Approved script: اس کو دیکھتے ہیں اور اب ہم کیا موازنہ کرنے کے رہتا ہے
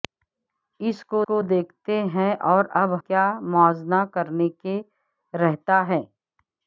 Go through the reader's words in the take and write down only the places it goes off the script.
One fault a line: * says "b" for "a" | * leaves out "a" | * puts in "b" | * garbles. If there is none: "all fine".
* puts in "کو"
* leaves out "ہم"